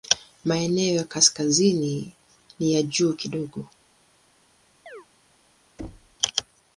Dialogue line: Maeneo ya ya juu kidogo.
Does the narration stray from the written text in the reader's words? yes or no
yes